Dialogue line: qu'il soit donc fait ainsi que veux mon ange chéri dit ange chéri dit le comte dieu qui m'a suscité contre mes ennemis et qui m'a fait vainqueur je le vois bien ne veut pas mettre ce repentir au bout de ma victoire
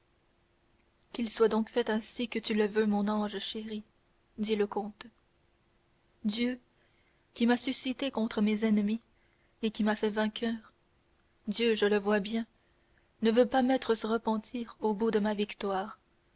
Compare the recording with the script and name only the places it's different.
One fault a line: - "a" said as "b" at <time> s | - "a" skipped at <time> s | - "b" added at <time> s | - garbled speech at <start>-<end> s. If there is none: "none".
- "tu le" added at 2.4 s
- "ange chéri dit" skipped at 4.5 s
- "dieu" added at 11.5 s